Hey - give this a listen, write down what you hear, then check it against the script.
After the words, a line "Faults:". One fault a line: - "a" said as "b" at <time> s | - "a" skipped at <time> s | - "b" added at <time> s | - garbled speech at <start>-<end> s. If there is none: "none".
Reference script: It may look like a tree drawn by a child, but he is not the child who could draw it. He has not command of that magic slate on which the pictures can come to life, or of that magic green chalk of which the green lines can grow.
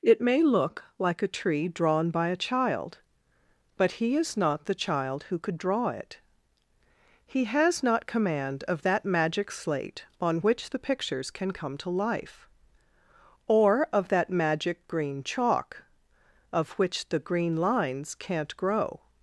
It may look like a tree drawn by a child, but he is not the child who could draw it. He has not command of that magic slate on which the pictures can come to life, or of that magic green chalk of which the green lines can't grow.
Faults:
- "can" said as "can't" at 18.1 s